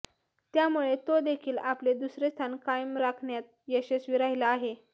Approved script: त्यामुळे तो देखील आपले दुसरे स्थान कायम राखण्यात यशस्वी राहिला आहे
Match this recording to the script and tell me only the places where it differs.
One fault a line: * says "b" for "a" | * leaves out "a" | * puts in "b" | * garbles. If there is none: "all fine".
all fine